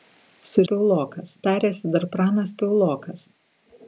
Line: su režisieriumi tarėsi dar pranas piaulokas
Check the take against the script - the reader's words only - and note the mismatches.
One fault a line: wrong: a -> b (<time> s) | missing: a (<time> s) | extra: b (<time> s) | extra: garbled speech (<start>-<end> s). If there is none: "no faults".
wrong: režisieriumi -> piaulokas (0.7 s)